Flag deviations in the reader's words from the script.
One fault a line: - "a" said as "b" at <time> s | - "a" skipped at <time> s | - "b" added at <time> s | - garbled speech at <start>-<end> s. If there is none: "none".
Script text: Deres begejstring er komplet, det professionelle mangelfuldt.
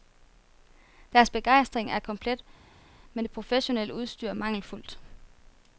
- "men" added at 3.1 s
- "udstyr" added at 3.9 s